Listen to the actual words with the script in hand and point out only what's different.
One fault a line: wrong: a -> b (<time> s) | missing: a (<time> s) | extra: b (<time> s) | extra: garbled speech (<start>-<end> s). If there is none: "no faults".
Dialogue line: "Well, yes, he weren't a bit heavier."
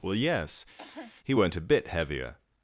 no faults